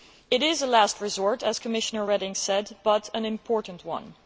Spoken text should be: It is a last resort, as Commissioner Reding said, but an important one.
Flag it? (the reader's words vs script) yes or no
no